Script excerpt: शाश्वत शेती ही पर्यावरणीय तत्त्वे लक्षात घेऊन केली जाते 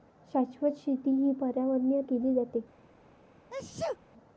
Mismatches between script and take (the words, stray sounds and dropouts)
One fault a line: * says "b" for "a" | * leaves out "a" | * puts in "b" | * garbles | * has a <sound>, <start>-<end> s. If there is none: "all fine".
* leaves out "तत्त्वे लक्षात घेऊन"
* has a sneeze, 3.5-4.0 s